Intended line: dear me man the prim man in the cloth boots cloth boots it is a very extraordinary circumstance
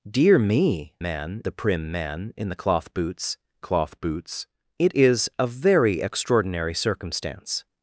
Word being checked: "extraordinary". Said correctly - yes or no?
yes